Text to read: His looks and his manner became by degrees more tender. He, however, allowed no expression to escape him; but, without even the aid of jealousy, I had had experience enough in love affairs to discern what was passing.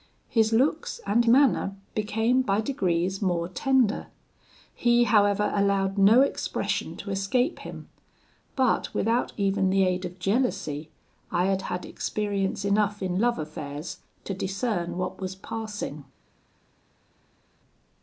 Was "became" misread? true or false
false